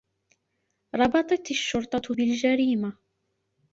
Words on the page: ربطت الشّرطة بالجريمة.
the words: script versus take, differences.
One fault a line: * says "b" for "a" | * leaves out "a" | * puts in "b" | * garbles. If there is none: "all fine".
all fine